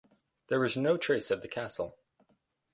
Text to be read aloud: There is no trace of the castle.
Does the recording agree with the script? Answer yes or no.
yes